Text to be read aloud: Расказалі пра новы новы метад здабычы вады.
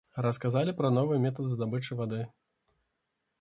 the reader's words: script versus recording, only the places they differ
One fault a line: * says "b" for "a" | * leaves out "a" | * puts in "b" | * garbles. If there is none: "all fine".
* leaves out "новы"